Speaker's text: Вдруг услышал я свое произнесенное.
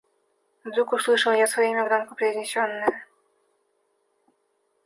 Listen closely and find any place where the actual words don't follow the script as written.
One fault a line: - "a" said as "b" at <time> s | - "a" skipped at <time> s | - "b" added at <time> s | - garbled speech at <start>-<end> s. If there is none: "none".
- "имя громко" added at 1.7 s